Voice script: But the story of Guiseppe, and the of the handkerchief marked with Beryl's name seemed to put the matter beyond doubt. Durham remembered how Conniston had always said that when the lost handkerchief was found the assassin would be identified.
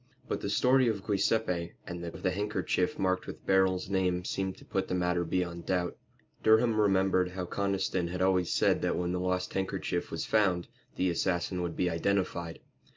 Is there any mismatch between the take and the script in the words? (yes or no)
no